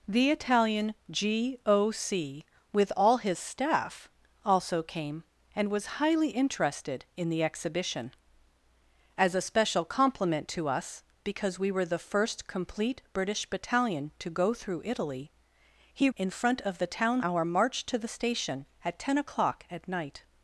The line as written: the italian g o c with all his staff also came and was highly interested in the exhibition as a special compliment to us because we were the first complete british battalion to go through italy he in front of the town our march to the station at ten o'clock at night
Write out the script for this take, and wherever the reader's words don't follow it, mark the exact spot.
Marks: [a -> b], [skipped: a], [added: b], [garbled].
the italian g o c with all his staff also came and was highly interested in the exhibition as a special compliment to us because we were the first complete british battalion to go through italy he in front of the town our march to the station at ten o'clock at night